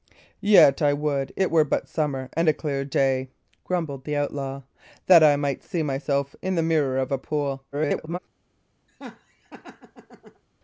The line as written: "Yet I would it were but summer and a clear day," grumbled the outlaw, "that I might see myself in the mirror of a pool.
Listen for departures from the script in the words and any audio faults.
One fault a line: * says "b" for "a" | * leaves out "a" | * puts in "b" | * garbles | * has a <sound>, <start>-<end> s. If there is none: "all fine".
* garbles
* has a laugh, 8.9-10.4 s